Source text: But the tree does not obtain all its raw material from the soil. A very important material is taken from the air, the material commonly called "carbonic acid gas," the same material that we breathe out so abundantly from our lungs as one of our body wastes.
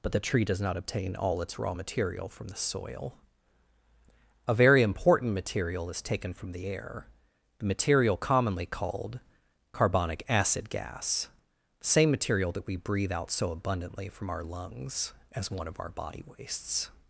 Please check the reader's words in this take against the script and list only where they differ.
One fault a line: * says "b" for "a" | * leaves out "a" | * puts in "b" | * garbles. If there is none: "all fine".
all fine